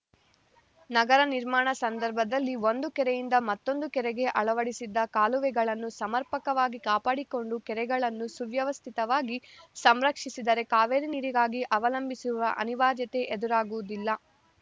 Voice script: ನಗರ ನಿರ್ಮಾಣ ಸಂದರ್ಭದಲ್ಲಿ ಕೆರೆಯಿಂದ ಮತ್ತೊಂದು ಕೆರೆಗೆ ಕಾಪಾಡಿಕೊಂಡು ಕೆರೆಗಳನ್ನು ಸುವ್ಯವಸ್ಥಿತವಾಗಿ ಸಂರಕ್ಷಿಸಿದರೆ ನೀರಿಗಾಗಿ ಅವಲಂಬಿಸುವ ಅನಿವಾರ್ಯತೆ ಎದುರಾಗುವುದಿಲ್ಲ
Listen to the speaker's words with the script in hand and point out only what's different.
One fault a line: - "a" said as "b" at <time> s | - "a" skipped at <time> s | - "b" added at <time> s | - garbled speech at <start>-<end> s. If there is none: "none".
- "ಒಂದು" added at 2.6 s
- "ಅಳವಡಿಸಿದ್ದ ಕಾಲುವೆಗಳನ್ನು ಸಮರ್ಪಕವಾಗಿ" added at 4.4 s
- "ಕಾವೇರಿ" added at 10.7 s